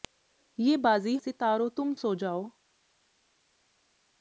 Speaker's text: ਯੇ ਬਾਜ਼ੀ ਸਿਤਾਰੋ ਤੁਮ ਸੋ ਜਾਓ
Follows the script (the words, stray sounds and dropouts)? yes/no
yes